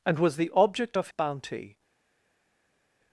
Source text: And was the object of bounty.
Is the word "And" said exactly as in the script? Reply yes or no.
yes